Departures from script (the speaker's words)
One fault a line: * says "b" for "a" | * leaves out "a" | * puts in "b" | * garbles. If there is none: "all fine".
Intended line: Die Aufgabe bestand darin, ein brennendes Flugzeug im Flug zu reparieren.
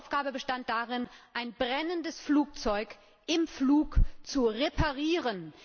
all fine